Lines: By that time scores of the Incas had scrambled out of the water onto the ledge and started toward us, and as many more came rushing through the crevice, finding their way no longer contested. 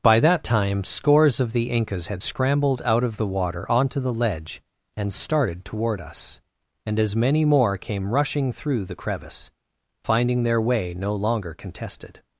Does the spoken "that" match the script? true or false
true